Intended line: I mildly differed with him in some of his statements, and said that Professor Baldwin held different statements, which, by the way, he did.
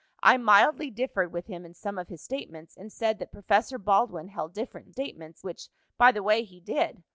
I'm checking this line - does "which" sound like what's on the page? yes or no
yes